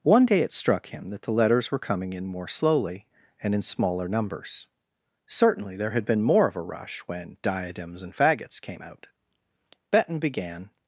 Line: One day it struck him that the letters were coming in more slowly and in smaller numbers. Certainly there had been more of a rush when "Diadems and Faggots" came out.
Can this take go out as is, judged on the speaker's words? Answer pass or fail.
fail